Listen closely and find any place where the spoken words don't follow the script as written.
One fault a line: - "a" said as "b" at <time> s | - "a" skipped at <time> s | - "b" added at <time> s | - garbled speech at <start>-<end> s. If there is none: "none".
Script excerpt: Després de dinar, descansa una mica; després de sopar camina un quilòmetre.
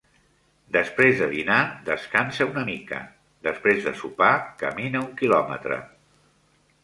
none